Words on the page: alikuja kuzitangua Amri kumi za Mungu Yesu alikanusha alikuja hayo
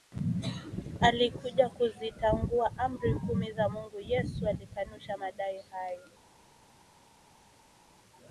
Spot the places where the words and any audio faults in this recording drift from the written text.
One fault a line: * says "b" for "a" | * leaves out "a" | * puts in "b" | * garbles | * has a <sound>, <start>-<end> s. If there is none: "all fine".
* says "madai" for "alikuja"